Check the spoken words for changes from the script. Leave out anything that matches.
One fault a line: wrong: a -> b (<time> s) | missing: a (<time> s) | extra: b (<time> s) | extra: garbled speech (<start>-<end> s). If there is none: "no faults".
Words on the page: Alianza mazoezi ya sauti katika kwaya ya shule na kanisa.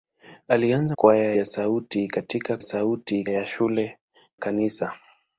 wrong: mazoezi -> kwaya (0.9 s)
wrong: kwaya -> sauti (2.6 s)
missing: na (4.0 s)